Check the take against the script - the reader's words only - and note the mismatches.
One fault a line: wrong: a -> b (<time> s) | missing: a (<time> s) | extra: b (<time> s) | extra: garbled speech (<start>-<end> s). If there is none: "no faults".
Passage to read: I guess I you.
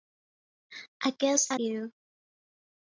no faults